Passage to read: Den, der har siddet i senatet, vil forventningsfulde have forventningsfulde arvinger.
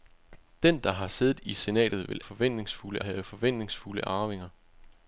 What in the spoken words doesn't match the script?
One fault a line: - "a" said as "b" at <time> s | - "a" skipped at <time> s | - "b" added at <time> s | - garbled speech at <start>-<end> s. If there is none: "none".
none